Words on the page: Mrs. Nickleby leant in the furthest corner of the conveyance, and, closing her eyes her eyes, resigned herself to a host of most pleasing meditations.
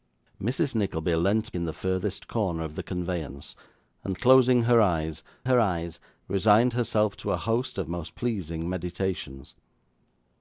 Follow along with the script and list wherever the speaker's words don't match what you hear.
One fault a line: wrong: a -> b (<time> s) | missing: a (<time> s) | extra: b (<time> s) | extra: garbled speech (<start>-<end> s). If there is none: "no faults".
no faults